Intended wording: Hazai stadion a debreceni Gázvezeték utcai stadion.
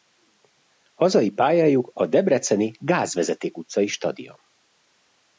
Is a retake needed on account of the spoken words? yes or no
yes